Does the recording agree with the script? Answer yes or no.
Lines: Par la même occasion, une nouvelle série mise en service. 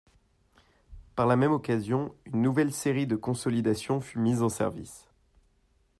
no